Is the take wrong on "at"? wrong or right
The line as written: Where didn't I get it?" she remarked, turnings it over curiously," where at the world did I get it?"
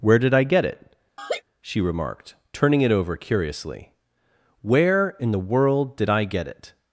wrong